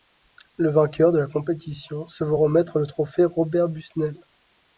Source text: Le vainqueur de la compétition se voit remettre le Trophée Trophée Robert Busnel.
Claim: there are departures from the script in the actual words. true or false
true